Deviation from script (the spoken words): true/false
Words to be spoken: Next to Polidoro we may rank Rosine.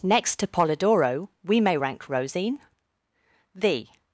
true